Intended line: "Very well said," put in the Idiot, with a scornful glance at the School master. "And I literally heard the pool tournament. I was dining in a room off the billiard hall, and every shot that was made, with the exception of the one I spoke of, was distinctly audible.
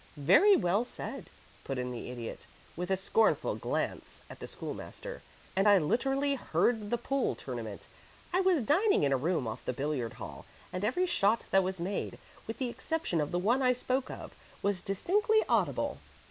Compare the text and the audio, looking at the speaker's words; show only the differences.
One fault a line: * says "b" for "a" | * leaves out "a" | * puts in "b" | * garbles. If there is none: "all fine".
all fine